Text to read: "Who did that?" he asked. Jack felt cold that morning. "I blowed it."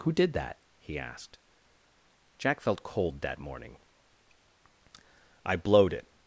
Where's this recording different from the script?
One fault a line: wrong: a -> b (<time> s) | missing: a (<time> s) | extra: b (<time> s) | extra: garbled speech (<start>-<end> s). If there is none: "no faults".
no faults